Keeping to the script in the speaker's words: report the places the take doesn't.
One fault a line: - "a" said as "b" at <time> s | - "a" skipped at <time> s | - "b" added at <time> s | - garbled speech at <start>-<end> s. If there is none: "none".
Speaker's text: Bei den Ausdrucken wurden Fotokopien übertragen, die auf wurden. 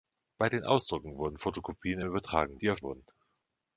none